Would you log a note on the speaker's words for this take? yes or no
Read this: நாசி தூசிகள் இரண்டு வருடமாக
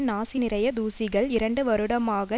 yes